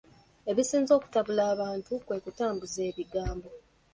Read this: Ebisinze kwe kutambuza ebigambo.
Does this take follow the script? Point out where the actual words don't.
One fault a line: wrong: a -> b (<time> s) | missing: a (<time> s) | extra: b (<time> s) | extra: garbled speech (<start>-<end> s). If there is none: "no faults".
extra: okutabula abantu (1.0 s)